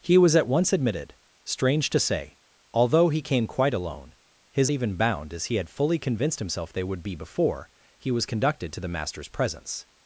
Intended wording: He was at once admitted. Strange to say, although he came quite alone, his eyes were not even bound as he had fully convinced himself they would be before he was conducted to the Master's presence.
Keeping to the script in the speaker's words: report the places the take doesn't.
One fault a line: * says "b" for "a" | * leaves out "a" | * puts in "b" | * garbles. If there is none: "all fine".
* leaves out "eyes were not"